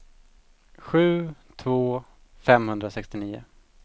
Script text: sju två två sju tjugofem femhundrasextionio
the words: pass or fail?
fail